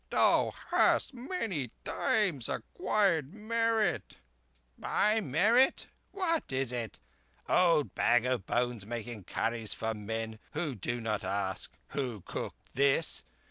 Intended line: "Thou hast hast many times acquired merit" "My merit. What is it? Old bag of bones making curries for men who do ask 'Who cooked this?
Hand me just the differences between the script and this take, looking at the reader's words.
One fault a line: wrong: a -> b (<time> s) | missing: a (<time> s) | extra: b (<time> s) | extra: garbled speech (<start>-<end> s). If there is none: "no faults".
missing: hast (1.1 s)
extra: not (11.0 s)